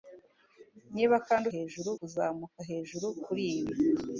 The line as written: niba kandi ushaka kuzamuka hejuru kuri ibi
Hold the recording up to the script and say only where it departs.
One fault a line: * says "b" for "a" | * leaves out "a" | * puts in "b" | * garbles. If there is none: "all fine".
* says "hejuru" for "ushaka"